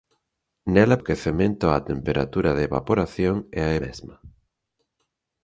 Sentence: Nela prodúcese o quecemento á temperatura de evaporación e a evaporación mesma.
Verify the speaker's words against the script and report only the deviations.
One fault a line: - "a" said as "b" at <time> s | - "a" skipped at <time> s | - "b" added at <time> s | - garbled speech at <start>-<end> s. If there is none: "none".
- "prodúcese" skipped at 1.0 s
- "evaporación" skipped at 3.7 s